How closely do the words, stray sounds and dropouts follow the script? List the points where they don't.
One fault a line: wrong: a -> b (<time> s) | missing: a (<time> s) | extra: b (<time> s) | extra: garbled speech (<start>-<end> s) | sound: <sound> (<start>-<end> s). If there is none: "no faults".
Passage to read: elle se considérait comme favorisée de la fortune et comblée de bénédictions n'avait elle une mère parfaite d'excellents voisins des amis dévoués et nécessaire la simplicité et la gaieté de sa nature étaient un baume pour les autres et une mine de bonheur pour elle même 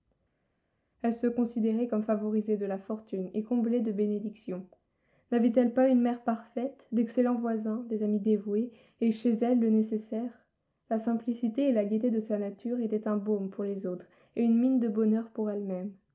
extra: pas (5.7 s)
extra: chez elle le (9.1 s)